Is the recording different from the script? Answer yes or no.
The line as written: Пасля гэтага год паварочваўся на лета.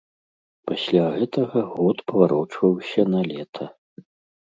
no